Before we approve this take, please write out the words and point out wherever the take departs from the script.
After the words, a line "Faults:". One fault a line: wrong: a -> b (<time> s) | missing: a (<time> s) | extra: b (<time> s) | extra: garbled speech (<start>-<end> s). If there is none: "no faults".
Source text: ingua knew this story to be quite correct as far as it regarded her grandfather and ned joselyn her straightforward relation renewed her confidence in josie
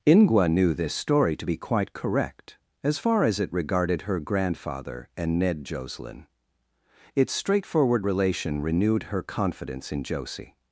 ingua knew this story to be quite correct as far as it regarded her grandfather and ned joselyn its straightforward relation renewed her confidence in josie
Faults:
wrong: her -> its (7.1 s)